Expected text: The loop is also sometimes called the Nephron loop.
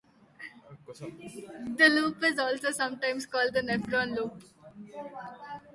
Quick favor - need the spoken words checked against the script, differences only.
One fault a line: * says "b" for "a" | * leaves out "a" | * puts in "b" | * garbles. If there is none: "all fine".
all fine